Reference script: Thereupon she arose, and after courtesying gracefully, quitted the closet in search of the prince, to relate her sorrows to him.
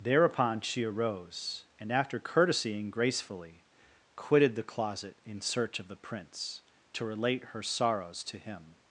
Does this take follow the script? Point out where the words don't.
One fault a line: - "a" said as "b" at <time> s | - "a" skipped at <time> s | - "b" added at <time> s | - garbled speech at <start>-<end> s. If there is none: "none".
none